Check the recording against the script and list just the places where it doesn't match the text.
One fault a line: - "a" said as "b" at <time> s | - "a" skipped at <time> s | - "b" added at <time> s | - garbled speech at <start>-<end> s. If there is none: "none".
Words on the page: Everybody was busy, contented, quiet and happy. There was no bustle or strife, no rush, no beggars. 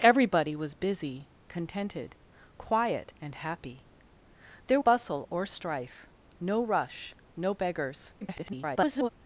- "was no" skipped at 4.8 s
- garbled speech at 8.2-9.1 s